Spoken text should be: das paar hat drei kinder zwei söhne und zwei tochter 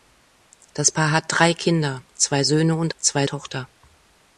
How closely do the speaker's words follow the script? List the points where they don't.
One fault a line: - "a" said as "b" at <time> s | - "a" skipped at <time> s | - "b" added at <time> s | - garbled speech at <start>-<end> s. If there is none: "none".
none